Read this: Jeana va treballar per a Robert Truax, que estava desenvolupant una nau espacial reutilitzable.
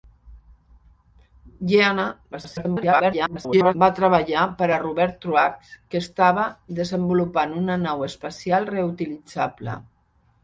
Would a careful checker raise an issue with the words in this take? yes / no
yes